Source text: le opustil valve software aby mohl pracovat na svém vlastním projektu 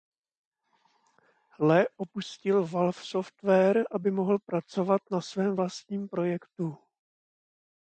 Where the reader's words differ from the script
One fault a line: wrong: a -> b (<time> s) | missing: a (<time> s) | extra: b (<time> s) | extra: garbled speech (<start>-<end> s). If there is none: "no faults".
no faults